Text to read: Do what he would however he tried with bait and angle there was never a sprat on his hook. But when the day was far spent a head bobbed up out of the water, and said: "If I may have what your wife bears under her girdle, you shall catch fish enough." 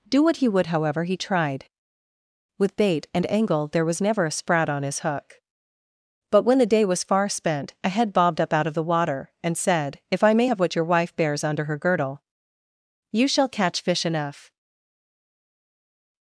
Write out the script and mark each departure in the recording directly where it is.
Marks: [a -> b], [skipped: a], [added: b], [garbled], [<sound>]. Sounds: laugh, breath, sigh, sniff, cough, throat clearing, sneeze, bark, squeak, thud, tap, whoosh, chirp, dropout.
Do what he would however he tried with bait and angle there was never a sprat on his hook. But when the day was far spent a head bobbed up out of the water, and said: "If I may have what your wife bears under her girdle, you shall catch fish enough."